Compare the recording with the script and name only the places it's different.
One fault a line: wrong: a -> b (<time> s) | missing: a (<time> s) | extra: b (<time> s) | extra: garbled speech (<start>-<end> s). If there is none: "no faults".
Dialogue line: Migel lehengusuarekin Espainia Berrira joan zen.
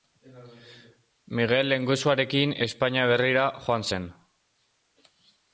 no faults